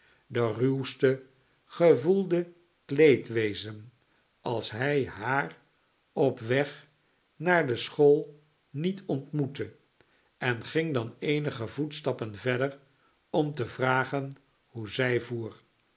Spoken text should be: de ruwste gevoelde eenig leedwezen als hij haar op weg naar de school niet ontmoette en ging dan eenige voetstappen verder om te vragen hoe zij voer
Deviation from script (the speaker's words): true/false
true